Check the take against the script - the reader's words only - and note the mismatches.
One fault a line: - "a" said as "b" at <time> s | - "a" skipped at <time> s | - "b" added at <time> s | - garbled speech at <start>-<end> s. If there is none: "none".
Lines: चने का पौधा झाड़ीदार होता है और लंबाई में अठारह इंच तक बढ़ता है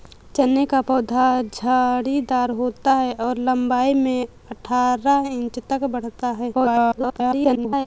- garbled speech at 6.5-7.9 s